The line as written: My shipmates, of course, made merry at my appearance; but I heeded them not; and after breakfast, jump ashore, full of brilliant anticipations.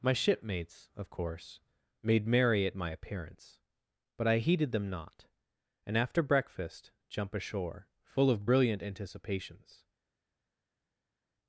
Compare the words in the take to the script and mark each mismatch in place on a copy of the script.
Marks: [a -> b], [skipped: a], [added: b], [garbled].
My shipmates, of course, made merry at my appearance; but I heeded them not; and after breakfast, jump ashore, full of brilliant anticipations.